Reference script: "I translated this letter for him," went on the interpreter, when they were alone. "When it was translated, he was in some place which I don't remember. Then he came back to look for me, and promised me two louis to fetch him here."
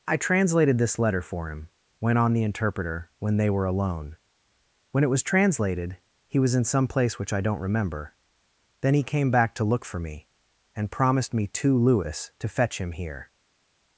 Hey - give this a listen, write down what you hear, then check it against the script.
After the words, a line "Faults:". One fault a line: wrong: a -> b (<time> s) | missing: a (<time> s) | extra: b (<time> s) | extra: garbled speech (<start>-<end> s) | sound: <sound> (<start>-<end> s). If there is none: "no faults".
"I translated this letter for him," went on the interpreter, when they were alone. "When it was translated, he was in some place which I don't remember. Then he came back to look for me, and promised me two louis to fetch him here."
Faults:
no faults